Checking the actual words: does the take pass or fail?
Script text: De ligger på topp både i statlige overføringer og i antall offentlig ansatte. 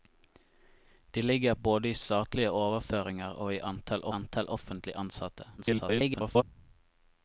fail